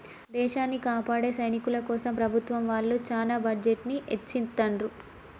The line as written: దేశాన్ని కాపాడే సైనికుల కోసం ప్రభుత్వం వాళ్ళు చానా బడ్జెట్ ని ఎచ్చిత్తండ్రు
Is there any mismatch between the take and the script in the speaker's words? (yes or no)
no